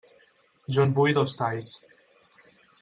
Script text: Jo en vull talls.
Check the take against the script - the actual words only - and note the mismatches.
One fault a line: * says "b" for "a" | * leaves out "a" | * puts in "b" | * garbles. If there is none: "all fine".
* puts in "dos"